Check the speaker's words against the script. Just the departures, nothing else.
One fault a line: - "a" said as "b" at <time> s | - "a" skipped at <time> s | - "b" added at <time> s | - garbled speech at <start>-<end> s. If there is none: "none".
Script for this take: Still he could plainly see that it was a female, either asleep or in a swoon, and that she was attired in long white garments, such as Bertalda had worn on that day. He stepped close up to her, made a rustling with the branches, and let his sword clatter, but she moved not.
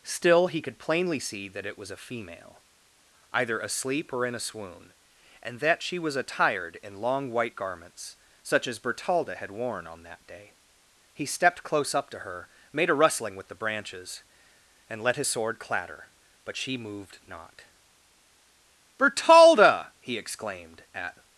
- "Bertalda he exclaimed at" added at 19.0 s